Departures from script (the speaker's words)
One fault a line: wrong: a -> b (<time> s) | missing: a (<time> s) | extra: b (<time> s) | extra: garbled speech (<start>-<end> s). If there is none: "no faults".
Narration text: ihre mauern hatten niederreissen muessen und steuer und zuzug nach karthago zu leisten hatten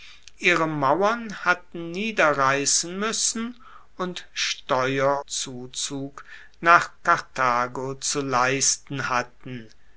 missing: und (5.2 s)